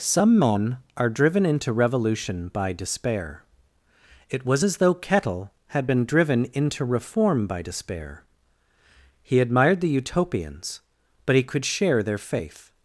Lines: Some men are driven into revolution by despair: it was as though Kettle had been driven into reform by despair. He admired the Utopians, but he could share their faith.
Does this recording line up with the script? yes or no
yes